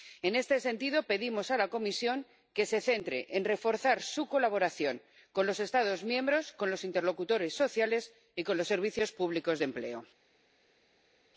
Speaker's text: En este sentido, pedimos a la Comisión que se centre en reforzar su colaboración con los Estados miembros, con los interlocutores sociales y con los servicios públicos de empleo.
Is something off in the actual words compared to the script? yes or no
no